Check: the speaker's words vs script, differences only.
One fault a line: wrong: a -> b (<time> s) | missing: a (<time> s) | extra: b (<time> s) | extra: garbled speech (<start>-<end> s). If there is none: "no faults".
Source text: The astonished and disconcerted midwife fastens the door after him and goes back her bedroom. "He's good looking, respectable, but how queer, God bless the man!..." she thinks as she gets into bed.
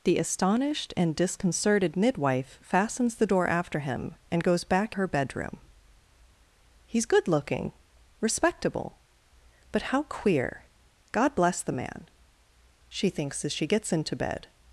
no faults